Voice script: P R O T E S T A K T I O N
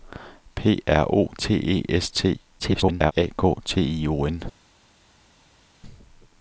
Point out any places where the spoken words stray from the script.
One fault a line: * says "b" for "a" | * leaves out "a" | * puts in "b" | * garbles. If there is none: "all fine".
* garbles